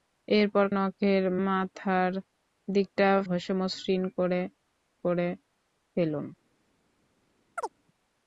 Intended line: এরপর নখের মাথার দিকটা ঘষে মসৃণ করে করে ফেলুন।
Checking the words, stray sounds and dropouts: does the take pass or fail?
fail